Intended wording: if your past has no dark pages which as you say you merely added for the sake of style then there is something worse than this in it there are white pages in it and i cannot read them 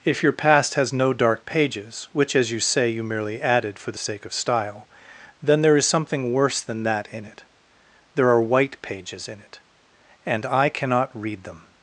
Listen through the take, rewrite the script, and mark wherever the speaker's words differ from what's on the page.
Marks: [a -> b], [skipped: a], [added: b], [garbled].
if your past has no dark pages which as you say you merely added for the sake of style then there is something worse than [this -> that] in it there are white pages in it and i cannot read them